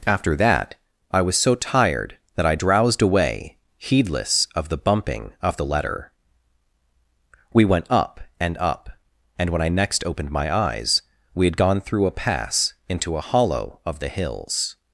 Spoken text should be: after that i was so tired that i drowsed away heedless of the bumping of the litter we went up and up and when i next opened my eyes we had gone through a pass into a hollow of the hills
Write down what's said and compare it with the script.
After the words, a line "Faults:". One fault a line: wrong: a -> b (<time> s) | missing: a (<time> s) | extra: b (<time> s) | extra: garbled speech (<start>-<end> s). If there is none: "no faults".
after that i was so tired that i drowsed away heedless of the bumping of the letter we went up and up and when i next opened my eyes we had gone through a pass into a hollow of the hills
Faults:
wrong: litter -> letter (5.6 s)